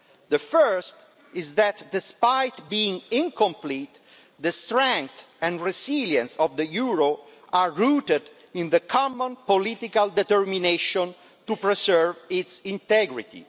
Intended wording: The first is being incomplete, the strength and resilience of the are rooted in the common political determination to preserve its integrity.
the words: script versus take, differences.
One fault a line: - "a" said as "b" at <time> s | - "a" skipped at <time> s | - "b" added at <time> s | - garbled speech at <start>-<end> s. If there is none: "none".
- "that despite" added at 1.6 s
- "euro" added at 6.7 s